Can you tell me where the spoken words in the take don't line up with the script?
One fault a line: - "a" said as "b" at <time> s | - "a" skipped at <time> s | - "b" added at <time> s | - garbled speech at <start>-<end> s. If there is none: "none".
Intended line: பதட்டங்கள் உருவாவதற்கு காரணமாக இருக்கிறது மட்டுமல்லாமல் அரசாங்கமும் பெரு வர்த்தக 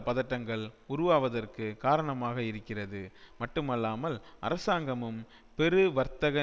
none